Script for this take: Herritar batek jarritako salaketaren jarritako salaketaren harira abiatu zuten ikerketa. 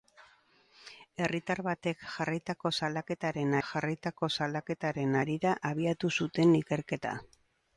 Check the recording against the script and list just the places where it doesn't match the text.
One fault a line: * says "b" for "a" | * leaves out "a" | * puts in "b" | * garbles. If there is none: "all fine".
all fine